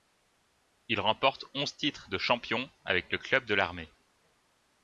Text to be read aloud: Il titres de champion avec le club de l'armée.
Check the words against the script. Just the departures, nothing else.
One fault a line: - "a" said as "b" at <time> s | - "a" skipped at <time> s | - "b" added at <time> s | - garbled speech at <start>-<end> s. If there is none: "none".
- "remporte onze" added at 1.0 s